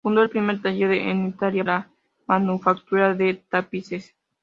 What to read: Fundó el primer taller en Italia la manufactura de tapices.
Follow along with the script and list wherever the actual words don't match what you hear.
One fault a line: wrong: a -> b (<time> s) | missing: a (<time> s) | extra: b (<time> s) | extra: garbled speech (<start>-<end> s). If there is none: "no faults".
no faults